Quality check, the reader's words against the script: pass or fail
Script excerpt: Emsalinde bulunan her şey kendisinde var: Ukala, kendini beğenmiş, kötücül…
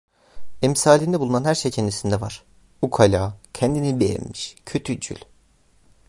pass